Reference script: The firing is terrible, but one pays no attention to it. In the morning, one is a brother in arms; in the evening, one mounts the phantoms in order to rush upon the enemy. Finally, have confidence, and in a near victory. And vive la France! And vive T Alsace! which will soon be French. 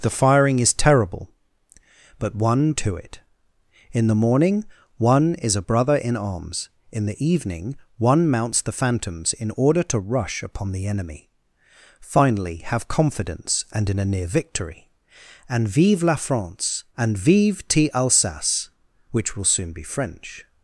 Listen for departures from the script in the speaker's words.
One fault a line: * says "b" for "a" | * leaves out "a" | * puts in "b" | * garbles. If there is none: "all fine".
* leaves out "pays no attention"